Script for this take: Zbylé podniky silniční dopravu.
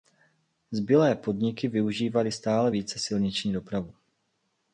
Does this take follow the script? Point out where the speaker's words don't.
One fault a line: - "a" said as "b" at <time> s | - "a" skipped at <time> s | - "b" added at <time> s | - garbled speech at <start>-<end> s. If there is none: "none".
- "využívaly stále více" added at 1.7 s